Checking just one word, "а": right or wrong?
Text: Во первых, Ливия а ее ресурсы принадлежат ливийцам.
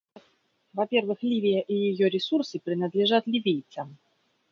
wrong